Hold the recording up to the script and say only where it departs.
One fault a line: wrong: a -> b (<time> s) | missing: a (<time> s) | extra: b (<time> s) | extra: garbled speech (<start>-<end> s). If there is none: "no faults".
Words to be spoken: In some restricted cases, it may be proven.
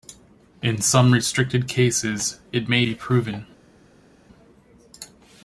no faults